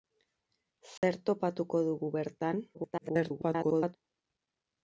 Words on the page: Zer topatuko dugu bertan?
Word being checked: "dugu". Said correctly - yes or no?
yes